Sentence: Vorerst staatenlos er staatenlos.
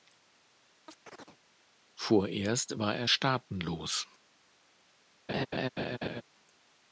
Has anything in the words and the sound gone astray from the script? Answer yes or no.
yes